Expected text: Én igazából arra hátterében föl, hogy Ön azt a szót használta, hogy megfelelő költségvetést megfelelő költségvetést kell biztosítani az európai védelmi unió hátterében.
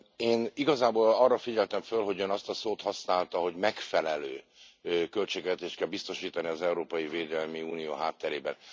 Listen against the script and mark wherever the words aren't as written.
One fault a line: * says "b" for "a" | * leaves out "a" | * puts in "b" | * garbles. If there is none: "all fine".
* says "figyeltem" for "hátterében"
* leaves out "megfelelő költségvetést"